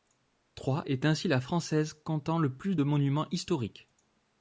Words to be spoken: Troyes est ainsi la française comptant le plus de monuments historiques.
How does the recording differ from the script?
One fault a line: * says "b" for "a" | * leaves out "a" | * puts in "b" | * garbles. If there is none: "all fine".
all fine